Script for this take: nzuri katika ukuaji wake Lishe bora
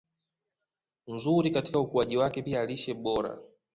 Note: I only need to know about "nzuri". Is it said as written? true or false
true